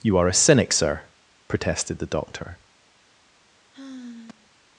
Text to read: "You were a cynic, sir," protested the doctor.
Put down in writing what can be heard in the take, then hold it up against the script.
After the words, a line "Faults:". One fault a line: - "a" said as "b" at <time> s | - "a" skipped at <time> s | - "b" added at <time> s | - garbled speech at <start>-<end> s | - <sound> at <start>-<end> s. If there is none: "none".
"You are a cynic, sir," protested the doctor.
Faults:
- "were" said as "are" at 0.2 s
- sigh at 3.7-4.5 s